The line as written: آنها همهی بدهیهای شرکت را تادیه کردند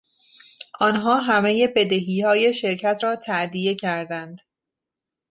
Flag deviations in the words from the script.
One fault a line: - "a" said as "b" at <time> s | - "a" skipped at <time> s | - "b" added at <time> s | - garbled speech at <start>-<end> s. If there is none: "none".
none